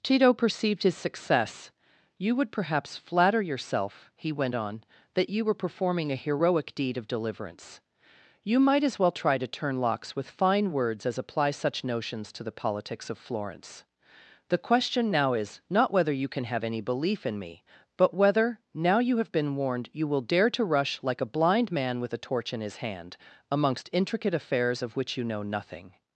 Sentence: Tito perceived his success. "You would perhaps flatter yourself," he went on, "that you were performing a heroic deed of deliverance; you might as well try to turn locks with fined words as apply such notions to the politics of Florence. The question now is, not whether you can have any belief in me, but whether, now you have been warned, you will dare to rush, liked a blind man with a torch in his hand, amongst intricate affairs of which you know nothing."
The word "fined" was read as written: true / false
false